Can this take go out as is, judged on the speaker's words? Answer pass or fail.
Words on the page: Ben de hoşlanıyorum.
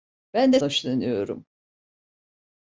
pass